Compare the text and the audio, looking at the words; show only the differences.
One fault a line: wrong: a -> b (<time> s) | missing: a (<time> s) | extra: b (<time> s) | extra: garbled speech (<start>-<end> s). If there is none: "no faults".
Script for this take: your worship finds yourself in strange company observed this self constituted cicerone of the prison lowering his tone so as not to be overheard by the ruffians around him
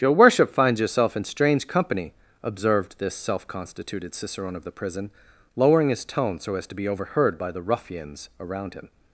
missing: not (6.7 s)